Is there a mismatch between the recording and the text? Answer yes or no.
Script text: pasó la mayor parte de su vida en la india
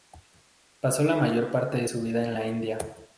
no